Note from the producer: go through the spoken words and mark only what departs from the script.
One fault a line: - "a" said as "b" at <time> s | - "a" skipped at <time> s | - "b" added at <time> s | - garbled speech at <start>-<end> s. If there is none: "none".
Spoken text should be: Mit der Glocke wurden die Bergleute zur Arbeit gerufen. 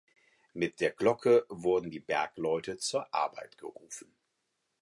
none